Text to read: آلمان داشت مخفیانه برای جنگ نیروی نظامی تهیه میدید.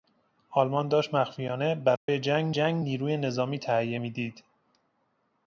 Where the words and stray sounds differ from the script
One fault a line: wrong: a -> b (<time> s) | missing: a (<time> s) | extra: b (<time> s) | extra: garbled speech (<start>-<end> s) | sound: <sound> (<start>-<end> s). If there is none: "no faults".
sound: dropout (2.0-2.1 s)
extra: جنگ (2.5 s)